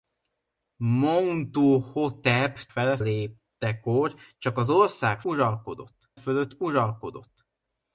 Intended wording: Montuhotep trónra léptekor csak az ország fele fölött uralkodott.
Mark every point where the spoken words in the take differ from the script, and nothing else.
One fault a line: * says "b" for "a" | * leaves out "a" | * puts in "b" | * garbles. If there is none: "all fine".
* says "fele" for "trónra"
* says "uralkodott" for "fele"